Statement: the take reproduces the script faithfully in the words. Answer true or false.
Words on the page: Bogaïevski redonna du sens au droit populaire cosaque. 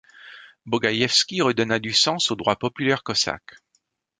true